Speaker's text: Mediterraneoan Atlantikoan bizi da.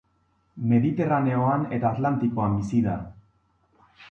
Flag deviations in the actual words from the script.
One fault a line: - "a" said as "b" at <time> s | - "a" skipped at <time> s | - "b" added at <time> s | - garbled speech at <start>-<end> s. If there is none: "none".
- "eta" added at 1.8 s